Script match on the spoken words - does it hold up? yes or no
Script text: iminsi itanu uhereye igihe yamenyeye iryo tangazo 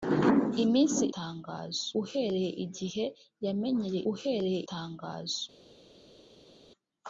no